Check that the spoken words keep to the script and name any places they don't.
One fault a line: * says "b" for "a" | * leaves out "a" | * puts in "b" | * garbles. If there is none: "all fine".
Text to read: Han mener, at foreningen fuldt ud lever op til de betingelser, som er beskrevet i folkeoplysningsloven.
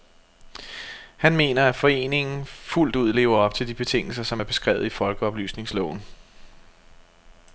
all fine